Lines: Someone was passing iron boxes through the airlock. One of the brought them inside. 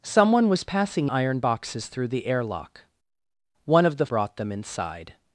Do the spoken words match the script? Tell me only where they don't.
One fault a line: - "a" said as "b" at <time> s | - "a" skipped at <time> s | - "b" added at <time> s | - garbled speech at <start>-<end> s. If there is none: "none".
none